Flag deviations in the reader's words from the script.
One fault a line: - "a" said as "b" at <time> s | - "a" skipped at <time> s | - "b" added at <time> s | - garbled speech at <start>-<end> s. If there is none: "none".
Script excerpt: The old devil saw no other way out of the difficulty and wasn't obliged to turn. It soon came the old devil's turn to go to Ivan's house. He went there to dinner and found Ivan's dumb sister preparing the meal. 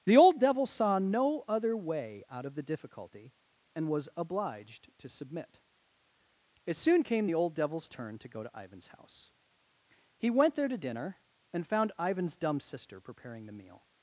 - "wasn't" said as "was" at 3.9 s
- "turn" said as "submit" at 5.1 s